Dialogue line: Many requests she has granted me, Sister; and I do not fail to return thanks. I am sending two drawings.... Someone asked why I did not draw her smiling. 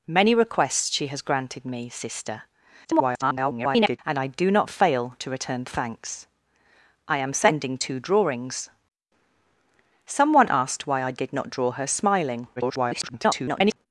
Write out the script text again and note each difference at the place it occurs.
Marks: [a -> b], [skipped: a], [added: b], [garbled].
Many requests she has granted me, Sister; [garbled] and I do not fail to return thanks. I am sending two drawings.... Someone asked why I did not draw her smiling. [garbled]